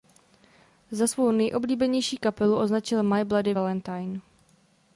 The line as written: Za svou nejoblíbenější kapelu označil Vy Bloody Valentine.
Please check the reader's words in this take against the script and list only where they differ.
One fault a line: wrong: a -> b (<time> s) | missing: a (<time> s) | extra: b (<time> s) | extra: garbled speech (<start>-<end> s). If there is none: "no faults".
wrong: Vy -> My (3.0 s)